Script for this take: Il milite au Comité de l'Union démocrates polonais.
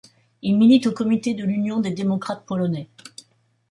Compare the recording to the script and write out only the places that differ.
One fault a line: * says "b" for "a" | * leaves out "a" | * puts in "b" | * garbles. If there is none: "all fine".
* puts in "des"